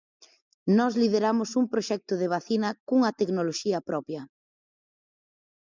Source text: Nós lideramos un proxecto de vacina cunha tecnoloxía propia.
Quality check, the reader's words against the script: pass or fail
pass